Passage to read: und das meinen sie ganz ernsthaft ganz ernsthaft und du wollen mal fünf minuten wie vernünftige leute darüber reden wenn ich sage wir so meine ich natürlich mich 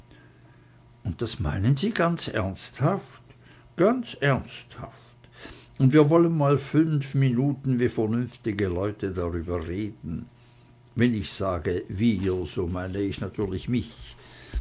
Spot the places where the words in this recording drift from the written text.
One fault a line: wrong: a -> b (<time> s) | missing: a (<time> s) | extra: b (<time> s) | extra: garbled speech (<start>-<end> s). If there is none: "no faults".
wrong: du -> wir (5.9 s)